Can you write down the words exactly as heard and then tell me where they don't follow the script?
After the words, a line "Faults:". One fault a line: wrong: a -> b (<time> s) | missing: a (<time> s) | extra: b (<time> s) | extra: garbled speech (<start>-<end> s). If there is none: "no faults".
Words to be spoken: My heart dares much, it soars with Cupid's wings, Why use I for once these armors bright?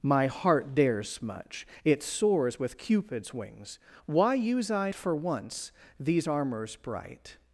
My heart dares much, it soars with Cupid's wings, Why use I for once these armors bright?
Faults:
no faults